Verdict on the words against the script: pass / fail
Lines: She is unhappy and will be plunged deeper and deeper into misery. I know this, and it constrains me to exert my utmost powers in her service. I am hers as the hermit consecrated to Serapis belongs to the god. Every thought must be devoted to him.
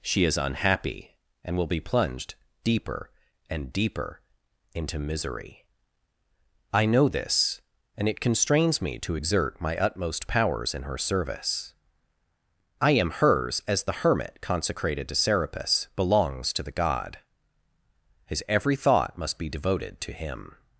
fail